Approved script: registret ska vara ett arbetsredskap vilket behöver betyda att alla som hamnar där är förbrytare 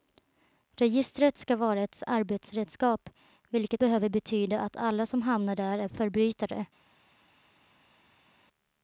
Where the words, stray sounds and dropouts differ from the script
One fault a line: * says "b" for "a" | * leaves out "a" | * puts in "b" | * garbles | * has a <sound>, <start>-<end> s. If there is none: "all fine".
all fine